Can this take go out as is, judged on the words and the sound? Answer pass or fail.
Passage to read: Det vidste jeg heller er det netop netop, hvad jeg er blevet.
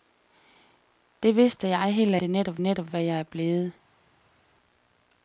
pass